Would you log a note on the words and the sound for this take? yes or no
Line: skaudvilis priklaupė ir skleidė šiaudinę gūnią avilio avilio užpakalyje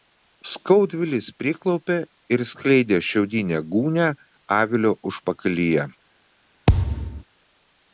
yes